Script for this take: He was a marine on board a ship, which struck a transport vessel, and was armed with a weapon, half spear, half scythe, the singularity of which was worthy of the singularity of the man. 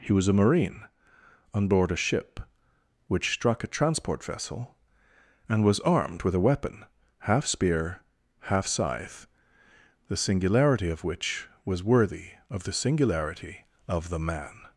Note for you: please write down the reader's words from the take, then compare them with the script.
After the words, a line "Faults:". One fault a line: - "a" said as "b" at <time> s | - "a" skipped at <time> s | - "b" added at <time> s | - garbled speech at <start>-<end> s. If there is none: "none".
He was a marine on board a ship, which struck a transport vessel, and was armed with a weapon, half spear, half scythe, the singularity of which was worthy of the singularity of the man.
Faults:
none